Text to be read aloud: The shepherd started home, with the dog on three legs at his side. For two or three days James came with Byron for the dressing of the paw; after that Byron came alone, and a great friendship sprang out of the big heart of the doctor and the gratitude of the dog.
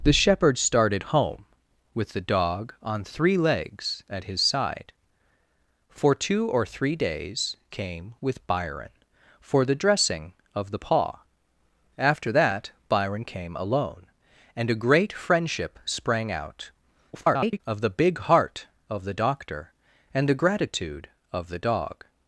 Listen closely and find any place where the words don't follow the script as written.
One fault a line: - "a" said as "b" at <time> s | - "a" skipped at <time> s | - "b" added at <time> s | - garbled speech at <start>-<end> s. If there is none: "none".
- "James" skipped at 7.5 s
- garbled speech at 17.1-17.6 s